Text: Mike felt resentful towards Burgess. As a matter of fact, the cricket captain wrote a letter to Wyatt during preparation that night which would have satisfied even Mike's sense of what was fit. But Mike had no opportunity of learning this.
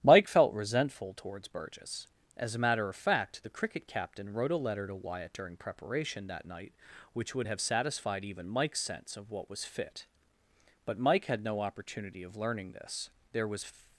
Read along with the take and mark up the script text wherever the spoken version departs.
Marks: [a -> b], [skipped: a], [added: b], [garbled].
Mike felt resentful towards Burgess. As a matter of fact, the cricket captain wrote a letter to Wyatt during preparation that night which would have satisfied even Mike's sense of what was fit. But Mike had no opportunity of learning this. [added: There was]